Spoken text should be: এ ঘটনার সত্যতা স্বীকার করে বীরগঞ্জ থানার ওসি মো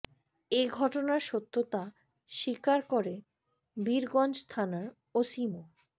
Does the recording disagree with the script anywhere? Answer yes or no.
no